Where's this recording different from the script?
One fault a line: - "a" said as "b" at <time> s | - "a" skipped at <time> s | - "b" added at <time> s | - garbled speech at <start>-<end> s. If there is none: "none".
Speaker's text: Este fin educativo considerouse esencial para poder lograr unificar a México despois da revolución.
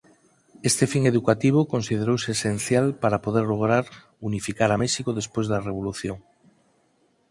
none